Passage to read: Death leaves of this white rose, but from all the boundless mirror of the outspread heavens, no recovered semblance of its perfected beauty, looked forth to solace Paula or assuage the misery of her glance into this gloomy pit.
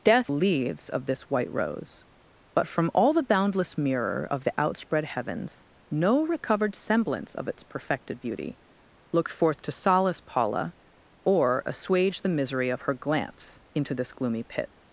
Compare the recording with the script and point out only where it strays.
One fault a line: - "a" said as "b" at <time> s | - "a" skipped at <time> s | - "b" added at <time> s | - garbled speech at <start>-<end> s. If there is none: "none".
none